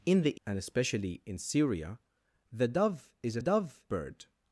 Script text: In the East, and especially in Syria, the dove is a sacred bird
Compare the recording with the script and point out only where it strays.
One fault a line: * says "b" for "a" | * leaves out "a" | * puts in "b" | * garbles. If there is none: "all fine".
* leaves out "East"
* says "dove" for "sacred"